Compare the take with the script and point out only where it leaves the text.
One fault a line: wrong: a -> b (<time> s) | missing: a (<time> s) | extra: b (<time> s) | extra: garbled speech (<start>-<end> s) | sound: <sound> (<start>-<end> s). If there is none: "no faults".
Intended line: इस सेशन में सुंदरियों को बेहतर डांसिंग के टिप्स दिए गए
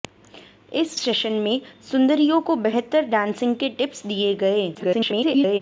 extra: garbled speech (4.7-5.6 s)